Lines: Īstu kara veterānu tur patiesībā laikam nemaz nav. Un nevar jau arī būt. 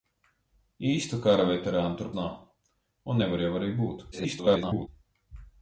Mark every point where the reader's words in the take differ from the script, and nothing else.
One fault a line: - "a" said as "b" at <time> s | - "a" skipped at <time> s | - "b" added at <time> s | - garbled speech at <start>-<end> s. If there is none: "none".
- "patiesībā laikam nemaz" skipped at 2.1 s
- garbled speech at 4.1-4.9 s